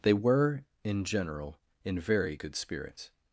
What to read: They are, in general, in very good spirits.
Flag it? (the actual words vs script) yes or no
yes